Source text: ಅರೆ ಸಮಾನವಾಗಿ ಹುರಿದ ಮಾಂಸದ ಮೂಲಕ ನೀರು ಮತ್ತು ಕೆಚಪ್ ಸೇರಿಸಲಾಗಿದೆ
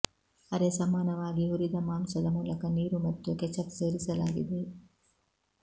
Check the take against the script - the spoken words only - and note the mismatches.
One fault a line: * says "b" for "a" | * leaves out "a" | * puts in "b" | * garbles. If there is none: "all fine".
all fine